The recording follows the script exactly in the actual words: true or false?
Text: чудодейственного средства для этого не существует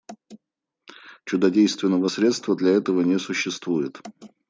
true